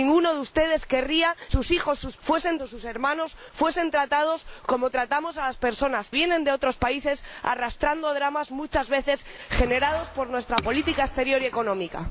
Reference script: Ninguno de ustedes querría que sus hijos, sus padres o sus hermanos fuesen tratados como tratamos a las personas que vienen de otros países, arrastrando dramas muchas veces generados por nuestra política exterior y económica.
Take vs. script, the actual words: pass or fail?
fail